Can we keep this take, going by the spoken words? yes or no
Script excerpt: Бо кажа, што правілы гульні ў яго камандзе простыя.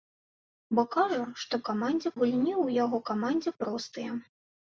no